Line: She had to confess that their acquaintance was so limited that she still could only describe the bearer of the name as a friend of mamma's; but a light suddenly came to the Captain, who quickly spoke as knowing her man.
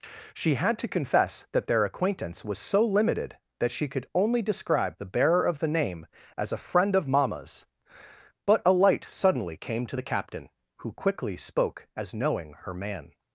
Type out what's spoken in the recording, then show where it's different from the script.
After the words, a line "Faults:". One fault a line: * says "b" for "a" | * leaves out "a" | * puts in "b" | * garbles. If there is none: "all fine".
She had to confess that their acquaintance was so limited that she could only describe the bearer of the name as a friend of mamma's; but a light suddenly came to the Captain, who quickly spoke as knowing her man.
Faults:
* leaves out "still"